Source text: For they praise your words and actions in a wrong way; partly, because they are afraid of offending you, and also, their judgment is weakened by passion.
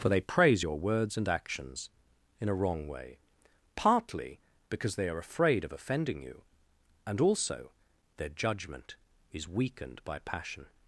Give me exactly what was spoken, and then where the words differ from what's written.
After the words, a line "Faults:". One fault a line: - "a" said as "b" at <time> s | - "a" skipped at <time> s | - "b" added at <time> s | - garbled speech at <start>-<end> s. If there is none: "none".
For they praise your words and actions in a wrong way; partly, because they are afraid of offending you, and also, their judgment is weakened by passion.
Faults:
none